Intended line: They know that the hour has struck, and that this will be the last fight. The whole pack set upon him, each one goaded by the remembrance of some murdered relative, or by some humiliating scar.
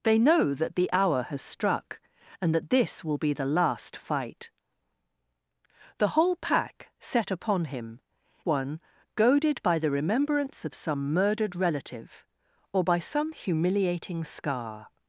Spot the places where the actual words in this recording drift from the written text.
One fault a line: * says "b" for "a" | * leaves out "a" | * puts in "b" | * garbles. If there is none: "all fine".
* leaves out "each"